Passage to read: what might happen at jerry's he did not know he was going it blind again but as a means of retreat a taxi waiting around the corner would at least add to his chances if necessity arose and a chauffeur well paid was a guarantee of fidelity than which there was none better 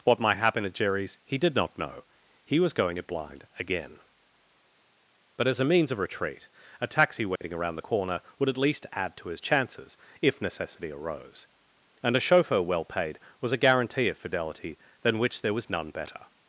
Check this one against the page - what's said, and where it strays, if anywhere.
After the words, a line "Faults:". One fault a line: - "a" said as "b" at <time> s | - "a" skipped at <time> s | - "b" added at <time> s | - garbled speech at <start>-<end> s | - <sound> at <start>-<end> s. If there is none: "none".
what might happen at jerry's he did not know he was going it blind again but as a means of retreat a taxi waiting around the corner would at least add to his chances if necessity arose and a chauffeur well paid was a guarantee of fidelity than which there was none better
Faults:
- dropout at 7.4-7.4 s